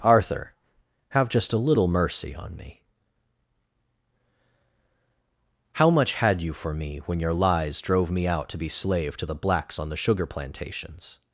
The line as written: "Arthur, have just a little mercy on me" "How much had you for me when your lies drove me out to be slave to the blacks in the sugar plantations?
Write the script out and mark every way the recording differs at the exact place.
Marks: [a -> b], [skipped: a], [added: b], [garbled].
"Arthur, have just a little mercy on me" "How much had you for me when your lies drove me out to be slave to the blacks [in -> on] the sugar plantations?